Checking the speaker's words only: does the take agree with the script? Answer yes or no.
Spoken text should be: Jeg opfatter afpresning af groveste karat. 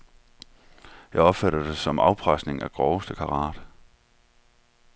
no